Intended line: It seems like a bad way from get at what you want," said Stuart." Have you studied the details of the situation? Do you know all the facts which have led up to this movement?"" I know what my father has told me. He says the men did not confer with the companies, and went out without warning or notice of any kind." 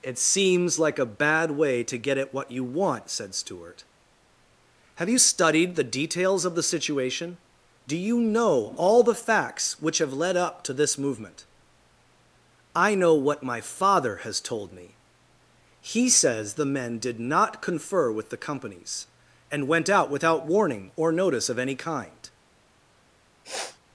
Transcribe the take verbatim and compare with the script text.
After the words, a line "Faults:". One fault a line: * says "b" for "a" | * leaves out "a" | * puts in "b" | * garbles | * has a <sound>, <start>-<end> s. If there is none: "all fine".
It seems like a bad way to get at what you want," said Stuart." Have you studied the details of the situation? Do you know all the facts which have led up to this movement?"" I know what my father has told me. He says the men did not confer with the companies, and went out without warning or notice of any kind."
Faults:
* says "to" for "from"
* has a sniff, 23.4-23.8 s